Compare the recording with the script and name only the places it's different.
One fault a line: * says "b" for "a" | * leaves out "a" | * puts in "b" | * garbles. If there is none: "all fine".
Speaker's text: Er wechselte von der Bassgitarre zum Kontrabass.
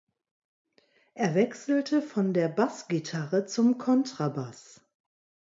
all fine